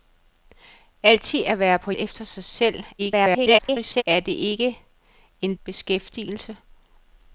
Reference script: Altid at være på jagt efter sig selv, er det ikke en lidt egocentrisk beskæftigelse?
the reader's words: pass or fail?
fail